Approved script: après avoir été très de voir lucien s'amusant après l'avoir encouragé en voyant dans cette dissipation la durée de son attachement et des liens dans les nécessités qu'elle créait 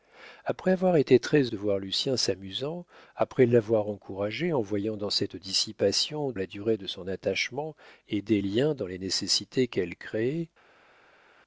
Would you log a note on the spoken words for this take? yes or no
no